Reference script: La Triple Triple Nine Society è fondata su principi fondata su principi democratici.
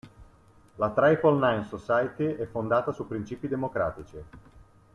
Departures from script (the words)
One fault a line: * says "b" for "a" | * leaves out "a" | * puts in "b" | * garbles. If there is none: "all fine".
* leaves out "Triple"
* leaves out "fondata su principi"